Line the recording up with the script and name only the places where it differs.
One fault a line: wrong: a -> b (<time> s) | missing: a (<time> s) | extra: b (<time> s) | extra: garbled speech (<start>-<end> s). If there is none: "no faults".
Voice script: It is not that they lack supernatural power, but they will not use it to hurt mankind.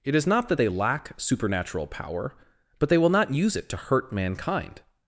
no faults